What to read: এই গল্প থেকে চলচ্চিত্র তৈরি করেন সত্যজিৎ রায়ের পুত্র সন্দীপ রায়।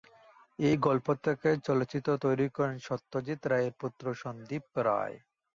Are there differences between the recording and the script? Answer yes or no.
no